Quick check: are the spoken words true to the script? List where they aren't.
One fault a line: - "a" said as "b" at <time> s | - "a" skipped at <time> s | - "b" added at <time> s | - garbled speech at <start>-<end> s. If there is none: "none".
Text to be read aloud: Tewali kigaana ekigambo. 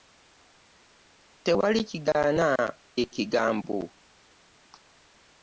none